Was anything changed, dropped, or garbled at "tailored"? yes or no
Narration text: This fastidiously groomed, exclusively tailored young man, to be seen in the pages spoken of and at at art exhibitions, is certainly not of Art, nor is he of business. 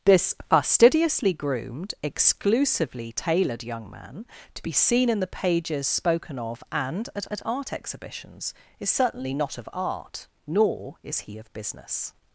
no